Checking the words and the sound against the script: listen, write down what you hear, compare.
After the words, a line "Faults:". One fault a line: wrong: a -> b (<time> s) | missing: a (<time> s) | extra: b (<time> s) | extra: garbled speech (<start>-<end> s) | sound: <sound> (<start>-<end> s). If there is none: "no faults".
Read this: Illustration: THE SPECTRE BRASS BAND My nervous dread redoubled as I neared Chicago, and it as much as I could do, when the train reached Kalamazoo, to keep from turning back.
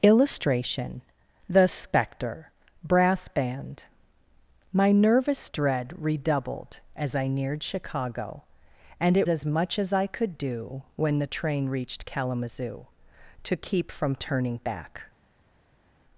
Illustration: THE SPECTRE BRASS BAND My nervous dread redoubled as I neared Chicago, and it as much as I could do, when the train reached Kalamazoo, to keep from turning back.
Faults:
no faults